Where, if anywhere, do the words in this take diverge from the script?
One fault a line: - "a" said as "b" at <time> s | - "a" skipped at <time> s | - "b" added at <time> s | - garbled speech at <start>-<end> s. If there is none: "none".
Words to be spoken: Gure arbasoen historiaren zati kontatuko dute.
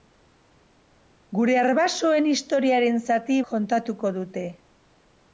none